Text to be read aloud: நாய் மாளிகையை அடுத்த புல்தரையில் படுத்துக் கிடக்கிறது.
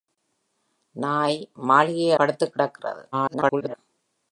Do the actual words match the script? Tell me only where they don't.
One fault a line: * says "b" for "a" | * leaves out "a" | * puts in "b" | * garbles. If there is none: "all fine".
* leaves out "அடுத்த புல்தரையில்"
* garbles